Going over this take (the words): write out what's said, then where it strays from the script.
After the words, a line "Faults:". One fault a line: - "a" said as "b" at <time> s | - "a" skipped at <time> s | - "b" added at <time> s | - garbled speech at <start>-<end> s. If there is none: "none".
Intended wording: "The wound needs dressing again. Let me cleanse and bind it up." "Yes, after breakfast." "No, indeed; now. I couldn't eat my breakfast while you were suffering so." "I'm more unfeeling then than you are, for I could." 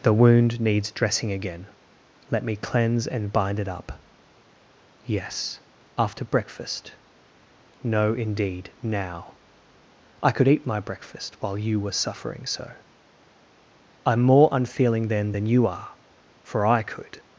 "The wound needs dressing again. Let me cleanse and bind it up." "Yes, after breakfast." "No, indeed; now. I could eat my breakfast while you were suffering so." "I'm more unfeeling then than you are, for I could."
Faults:
- "couldn't" said as "could" at 10.3 s